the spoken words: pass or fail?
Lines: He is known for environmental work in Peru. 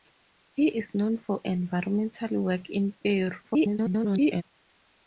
fail